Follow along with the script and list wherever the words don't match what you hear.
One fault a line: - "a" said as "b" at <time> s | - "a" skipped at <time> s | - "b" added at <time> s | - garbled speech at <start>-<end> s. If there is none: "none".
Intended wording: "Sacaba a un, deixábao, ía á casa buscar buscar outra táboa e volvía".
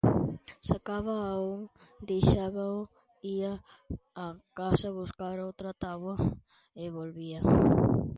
- "buscar" skipped at 5.4 s